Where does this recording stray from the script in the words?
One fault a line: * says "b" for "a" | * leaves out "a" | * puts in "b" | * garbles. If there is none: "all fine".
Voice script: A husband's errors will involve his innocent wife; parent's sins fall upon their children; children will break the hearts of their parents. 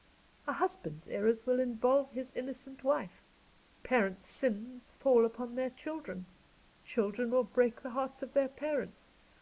all fine